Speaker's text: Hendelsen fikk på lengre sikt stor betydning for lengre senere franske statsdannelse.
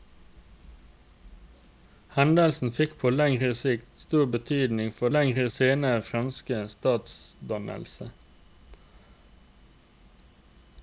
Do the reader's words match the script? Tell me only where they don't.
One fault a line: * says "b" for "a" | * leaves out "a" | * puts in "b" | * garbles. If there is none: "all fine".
all fine